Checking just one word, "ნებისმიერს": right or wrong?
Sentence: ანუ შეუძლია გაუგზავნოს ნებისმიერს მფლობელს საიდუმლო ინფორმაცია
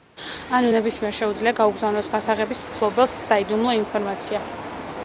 wrong